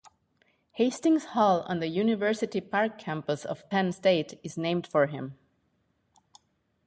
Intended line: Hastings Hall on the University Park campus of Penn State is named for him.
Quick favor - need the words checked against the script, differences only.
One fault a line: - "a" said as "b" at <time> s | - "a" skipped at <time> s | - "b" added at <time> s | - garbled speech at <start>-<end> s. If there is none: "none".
none